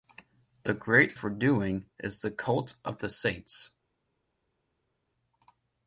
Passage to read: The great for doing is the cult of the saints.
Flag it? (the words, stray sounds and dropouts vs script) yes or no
no